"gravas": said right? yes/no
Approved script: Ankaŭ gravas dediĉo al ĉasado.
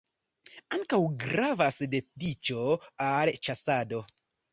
yes